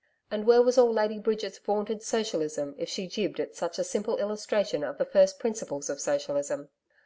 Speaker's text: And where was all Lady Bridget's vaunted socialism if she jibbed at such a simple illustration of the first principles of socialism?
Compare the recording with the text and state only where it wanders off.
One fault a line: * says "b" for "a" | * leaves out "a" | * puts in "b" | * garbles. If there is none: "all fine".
all fine